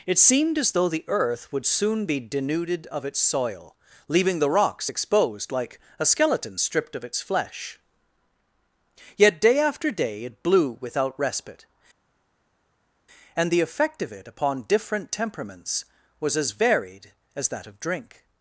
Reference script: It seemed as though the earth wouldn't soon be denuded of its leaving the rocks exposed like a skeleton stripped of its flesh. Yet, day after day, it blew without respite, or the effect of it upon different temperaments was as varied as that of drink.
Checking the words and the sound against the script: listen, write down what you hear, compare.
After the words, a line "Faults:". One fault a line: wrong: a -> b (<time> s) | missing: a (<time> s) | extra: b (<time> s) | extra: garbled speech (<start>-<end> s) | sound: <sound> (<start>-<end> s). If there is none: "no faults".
It seemed as though the earth would soon be denuded of its soil, leaving the rocks exposed like a skeleton stripped of its flesh. Yet, day after day, it blew without respite, and the effect of it upon different temperaments was as varied as that of drink.
Faults:
wrong: wouldn't -> would (1.5 s)
extra: soil (3.2 s)
wrong: or -> and (13.4 s)